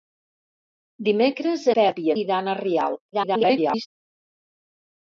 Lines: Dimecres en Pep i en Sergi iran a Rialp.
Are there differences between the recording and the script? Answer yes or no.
yes